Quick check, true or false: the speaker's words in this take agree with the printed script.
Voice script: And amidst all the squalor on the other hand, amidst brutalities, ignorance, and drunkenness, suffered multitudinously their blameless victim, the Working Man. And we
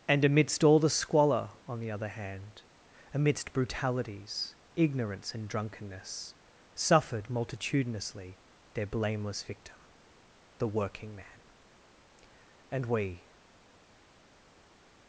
true